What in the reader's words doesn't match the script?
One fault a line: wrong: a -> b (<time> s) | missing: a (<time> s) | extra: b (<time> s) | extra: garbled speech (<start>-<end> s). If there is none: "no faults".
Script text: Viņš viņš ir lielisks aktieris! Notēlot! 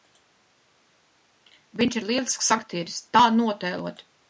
missing: viņš (2.0 s)
extra: Tā (3.2 s)